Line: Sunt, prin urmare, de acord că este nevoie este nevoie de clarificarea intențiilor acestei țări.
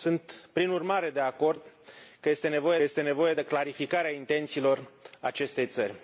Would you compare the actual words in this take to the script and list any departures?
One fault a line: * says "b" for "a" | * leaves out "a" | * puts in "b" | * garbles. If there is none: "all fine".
all fine